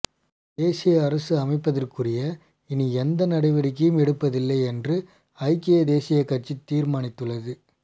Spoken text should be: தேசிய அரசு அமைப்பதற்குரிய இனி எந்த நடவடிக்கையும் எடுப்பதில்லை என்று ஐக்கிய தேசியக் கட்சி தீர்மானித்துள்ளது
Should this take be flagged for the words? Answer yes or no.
no